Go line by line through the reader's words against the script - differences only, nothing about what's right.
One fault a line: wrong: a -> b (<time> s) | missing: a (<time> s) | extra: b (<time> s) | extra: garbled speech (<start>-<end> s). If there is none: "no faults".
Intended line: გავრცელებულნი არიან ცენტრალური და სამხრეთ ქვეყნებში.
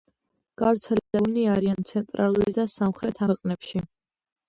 no faults